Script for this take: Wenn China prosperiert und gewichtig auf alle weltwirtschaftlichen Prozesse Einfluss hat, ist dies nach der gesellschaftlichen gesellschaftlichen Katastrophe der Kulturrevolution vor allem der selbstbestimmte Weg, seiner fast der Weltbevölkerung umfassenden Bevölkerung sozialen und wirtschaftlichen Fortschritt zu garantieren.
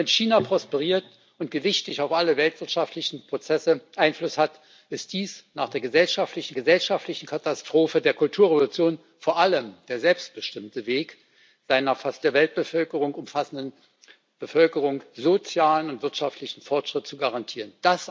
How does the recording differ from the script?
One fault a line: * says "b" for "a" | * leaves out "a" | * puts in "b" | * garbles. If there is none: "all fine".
all fine